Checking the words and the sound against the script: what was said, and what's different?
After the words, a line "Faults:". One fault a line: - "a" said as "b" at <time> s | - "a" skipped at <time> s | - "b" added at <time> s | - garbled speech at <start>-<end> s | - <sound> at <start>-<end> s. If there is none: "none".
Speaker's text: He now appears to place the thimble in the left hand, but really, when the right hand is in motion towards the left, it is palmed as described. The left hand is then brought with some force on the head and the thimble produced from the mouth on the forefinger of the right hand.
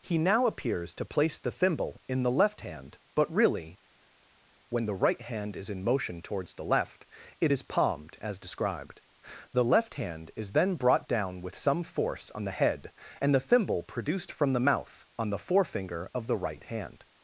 He now appears to place the thimble in the left hand, but really, when the right hand is in motion towards the left, it is palmed as described. The left hand is then brought down with some force on the head and the thimble produced from the mouth on the forefinger of the right hand.
Faults:
- "down" added at 11.1 s